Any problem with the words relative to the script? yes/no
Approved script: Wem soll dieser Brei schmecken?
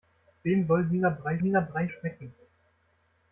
yes